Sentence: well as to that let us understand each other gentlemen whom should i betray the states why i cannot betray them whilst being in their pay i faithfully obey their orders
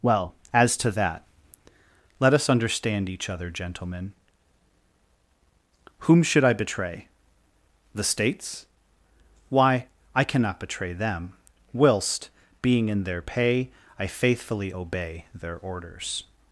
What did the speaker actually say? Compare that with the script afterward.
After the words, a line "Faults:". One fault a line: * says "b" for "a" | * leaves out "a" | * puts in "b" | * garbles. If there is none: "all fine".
well as to that let us understand each other gentlemen whom should i betray the states why i cannot betray them whilst being in their pay i faithfully obey their orders
Faults:
all fine